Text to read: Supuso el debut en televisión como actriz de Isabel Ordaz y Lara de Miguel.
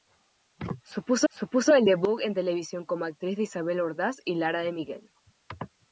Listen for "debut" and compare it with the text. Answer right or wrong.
right